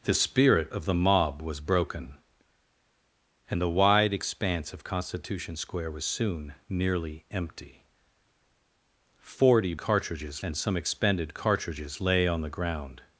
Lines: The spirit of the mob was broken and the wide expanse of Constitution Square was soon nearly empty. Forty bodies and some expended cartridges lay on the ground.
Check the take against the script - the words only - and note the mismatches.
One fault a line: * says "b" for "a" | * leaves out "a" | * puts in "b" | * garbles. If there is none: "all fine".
* says "cartridges" for "bodies"